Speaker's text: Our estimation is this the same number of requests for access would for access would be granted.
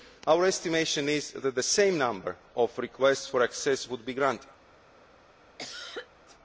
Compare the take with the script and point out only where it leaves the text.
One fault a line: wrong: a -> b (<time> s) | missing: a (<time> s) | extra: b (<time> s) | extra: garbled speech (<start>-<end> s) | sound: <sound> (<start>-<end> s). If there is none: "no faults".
wrong: this -> that (1.3 s)
missing: for access would (4.0 s)
sound: cough (5.6-6.1 s)